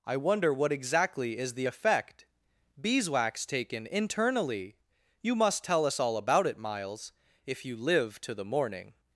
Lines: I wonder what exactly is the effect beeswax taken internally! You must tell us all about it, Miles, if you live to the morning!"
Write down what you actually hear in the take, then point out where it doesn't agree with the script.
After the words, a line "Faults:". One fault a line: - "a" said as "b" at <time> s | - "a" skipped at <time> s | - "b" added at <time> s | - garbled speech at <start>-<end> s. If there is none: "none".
I wonder what exactly is the effect beeswax taken internally! You must tell us all about it, Miles, if you live to the morning!"
Faults:
none